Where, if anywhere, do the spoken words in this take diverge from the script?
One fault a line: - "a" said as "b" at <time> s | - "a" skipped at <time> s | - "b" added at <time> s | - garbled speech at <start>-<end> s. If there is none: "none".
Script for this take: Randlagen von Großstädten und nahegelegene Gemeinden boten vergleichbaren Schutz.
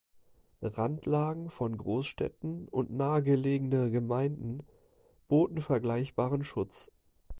none